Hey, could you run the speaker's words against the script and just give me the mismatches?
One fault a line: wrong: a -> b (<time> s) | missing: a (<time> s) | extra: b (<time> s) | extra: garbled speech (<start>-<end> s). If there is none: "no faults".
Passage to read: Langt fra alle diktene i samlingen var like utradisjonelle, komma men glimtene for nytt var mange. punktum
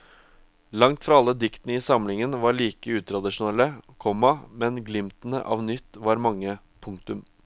wrong: for -> av (5.4 s)